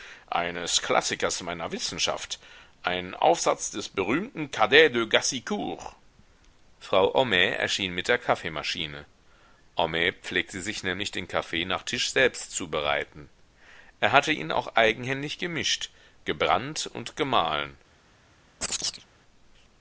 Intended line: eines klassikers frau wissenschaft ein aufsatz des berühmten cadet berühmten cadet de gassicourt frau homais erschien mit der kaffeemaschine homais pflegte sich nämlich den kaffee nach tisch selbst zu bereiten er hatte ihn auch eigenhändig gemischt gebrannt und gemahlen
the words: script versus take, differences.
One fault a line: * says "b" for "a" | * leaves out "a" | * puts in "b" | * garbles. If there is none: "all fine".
* says "meiner" for "frau"
* leaves out "berühmten cadet"